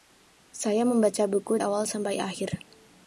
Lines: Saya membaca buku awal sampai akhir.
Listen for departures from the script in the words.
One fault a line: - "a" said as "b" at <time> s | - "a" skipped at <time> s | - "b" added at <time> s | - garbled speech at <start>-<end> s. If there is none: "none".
none